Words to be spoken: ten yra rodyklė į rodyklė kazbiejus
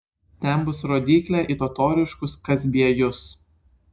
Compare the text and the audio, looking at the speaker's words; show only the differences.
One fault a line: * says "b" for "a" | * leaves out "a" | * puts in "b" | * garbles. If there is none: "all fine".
* says "bus" for "yra"
* says "totoriškus" for "rodyklė"